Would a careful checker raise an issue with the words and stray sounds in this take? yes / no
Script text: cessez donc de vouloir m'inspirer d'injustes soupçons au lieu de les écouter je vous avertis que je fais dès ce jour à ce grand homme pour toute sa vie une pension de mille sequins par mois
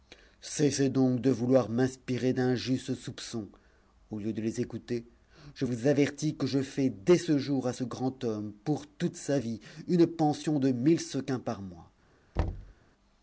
yes